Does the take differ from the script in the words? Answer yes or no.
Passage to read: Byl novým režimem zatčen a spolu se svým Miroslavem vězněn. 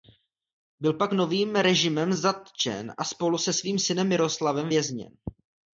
yes